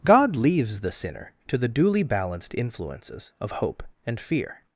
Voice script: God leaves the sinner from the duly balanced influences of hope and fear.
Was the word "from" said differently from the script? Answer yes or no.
yes